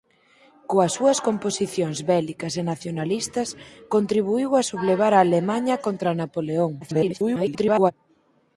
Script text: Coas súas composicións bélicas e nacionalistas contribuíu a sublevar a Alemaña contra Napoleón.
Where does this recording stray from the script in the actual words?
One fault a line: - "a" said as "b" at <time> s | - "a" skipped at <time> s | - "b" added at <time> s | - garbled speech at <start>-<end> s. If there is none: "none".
- garbled speech at 6.8-7.9 s